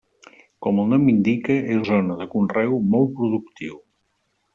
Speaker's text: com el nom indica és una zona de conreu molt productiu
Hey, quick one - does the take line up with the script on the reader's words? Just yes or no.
no